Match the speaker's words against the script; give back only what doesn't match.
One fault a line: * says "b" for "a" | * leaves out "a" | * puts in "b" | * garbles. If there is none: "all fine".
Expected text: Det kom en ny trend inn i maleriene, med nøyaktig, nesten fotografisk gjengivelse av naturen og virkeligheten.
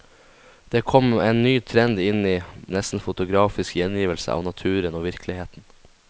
* leaves out "maleriene med nøyaktig"